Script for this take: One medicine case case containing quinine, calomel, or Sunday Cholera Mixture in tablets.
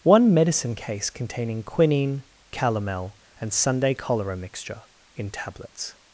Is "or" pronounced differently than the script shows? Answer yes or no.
yes